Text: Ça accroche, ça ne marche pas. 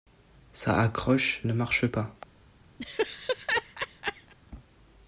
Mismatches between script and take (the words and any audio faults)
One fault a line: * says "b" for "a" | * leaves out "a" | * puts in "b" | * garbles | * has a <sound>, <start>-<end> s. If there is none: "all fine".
* leaves out "ça"
* has a laugh, 2.8-4.3 s